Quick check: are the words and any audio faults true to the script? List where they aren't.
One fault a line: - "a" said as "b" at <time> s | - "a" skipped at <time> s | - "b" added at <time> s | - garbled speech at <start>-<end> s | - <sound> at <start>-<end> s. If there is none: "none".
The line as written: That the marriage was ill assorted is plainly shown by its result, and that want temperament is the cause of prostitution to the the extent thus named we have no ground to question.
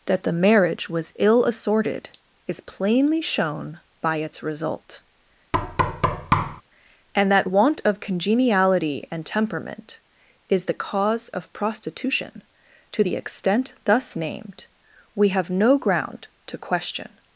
- thud at 5.5-6.6 s
- "of congeniality and" added at 7.8 s
- "the" skipped at 13.2 s